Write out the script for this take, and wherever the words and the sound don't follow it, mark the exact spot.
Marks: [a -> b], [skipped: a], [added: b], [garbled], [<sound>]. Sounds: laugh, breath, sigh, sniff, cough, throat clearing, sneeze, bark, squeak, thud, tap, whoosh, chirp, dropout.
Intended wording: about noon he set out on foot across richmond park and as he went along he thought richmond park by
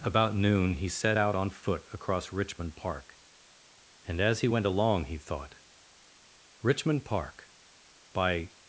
about noon he set out on foot across richmond park and as he went along he thought richmond park by